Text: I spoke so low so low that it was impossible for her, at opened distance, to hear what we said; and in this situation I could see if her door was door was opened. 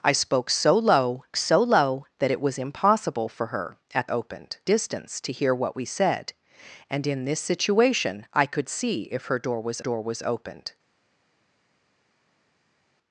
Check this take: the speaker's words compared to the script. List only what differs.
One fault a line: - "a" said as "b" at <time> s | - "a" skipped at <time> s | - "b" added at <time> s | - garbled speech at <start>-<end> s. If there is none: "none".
none